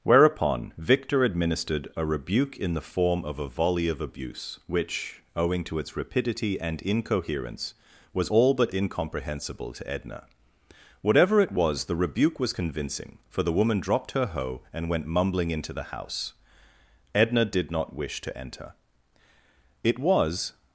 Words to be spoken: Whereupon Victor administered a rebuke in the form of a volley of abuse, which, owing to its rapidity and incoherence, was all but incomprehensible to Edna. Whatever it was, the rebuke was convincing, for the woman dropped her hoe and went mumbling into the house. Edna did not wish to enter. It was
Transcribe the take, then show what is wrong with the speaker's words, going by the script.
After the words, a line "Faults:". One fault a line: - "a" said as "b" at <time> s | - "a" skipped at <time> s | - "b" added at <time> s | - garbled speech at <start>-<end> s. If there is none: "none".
Whereupon Victor administered a rebuke in the form of a volley of abuse, which, owing to its rapidity and incoherence, was all but incomprehensible to Edna. Whatever it was, the rebuke was convincing, for the woman dropped her hoe and went mumbling into the house. Edna did not wish to enter. It was
Faults:
none